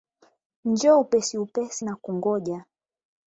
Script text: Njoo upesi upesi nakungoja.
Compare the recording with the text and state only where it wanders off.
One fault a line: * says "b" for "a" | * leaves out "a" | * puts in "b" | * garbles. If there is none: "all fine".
all fine